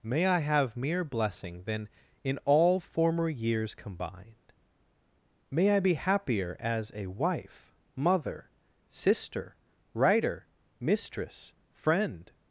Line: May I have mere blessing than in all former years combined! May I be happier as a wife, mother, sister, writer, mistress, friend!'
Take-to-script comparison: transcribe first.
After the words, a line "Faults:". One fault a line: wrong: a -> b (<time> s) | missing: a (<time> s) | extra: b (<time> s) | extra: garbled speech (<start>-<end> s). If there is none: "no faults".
May I have mere blessing than in all former years combined! May I be happier as a wife, mother, sister, writer, mistress, friend!'
Faults:
no faults